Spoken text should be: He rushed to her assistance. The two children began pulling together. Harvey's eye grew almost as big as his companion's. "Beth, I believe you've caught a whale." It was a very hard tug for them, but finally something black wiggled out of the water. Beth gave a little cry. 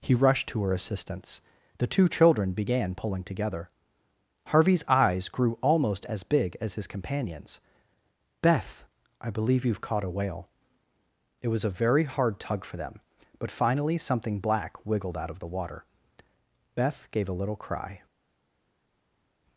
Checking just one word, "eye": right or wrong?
wrong